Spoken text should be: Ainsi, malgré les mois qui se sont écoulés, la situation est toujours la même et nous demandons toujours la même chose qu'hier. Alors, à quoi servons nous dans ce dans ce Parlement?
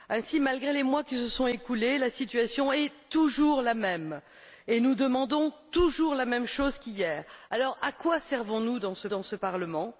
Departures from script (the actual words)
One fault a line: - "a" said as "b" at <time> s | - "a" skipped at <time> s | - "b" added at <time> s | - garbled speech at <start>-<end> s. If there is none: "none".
none